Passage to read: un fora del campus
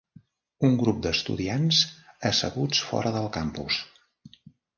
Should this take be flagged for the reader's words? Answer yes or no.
yes